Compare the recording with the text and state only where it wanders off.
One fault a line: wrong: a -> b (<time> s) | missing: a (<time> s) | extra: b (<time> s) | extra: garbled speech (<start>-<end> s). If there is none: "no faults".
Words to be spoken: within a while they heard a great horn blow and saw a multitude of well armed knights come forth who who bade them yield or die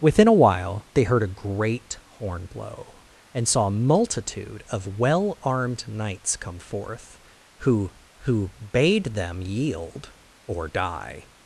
no faults